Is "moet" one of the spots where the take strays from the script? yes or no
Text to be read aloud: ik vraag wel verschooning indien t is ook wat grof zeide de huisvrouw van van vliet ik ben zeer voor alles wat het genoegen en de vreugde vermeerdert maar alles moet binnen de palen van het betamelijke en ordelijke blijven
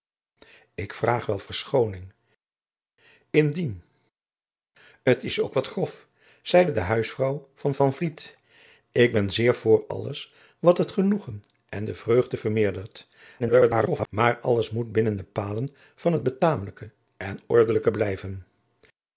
no